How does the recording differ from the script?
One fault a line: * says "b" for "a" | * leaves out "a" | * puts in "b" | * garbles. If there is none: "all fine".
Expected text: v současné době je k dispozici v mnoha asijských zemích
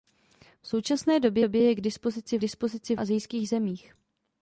* puts in "době"
* says "dispozici" for "mnoha"